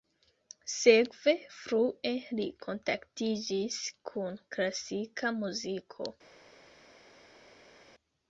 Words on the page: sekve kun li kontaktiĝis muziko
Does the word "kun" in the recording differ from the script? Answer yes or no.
yes